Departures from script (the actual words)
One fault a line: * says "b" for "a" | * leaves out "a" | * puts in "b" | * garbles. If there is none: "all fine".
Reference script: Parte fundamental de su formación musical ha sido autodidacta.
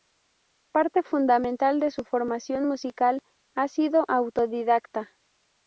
all fine